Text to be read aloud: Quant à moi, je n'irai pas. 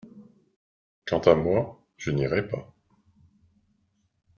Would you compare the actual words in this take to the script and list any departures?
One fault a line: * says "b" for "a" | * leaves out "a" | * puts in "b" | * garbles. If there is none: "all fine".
all fine